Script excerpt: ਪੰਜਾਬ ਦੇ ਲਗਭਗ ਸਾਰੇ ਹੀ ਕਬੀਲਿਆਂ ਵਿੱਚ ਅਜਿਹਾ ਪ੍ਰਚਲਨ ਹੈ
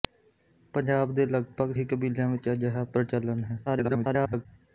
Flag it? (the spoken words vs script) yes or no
yes